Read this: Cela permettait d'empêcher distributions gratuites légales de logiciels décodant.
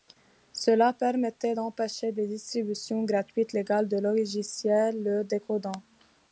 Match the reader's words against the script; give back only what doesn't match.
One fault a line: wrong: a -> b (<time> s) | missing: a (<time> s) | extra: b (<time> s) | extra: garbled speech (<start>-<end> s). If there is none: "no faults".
extra: des (2.1 s)
extra: le (5.0 s)